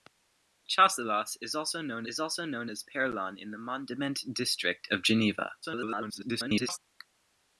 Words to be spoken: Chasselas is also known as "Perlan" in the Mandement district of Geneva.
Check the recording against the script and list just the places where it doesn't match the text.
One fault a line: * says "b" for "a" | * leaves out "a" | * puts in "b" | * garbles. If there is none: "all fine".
* puts in "is also known"
* garbles